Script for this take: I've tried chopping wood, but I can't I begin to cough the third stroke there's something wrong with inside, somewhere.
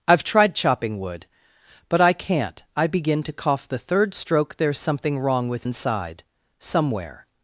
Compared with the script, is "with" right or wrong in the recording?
right